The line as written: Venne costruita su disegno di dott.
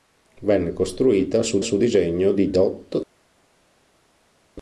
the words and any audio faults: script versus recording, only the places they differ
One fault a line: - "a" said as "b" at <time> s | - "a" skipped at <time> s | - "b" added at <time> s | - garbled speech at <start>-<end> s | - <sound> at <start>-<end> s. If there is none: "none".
- "su" added at 1.6 s